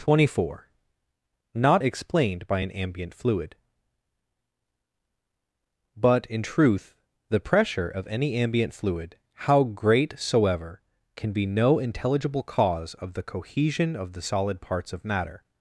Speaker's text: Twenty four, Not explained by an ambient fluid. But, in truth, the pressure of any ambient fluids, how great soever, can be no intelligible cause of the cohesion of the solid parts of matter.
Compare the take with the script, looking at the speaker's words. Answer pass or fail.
fail